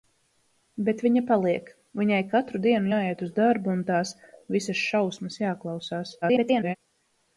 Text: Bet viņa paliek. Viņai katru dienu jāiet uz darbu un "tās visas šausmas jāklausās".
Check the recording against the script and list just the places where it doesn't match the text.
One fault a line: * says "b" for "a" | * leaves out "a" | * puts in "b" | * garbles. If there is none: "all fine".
* garbles